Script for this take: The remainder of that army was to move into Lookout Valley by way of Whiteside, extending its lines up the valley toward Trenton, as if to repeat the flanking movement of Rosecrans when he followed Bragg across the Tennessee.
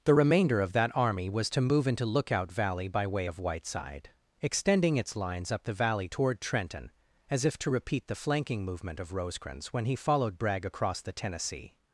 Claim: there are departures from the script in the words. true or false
false